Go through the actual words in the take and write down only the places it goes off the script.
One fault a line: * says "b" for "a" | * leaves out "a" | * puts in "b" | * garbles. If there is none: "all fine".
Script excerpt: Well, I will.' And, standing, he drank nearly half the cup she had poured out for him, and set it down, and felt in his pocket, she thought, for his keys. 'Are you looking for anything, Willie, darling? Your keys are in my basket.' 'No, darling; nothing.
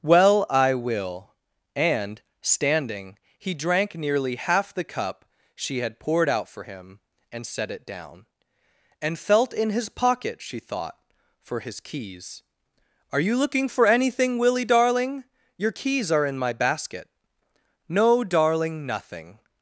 all fine